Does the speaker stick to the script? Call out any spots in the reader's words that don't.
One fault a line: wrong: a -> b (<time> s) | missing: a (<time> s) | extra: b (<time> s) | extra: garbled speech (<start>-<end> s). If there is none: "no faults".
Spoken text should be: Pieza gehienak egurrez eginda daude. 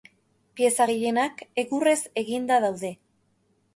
no faults